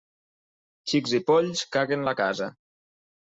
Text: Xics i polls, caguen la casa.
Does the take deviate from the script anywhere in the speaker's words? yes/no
no